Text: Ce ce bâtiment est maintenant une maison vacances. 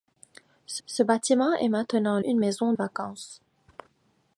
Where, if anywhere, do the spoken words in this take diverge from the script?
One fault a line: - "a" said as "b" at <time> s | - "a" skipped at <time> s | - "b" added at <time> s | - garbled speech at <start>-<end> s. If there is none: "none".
none